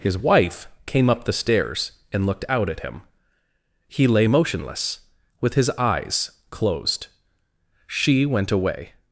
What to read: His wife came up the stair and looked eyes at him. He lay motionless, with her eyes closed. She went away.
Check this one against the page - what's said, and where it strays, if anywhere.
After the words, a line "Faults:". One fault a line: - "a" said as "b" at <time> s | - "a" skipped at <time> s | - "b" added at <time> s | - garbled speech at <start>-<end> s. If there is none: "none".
His wife came up the stairs and looked out at him. He lay motionless, with his eyes closed. She went away.
Faults:
- "stair" said as "stairs" at 1.3 s
- "eyes" said as "out" at 2.5 s
- "her" said as "his" at 5.5 s